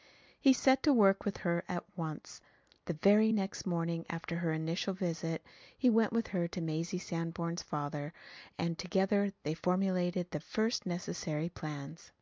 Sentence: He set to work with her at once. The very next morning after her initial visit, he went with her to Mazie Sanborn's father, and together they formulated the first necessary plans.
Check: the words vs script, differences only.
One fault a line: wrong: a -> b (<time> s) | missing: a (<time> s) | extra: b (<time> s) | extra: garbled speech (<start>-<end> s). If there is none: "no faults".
no faults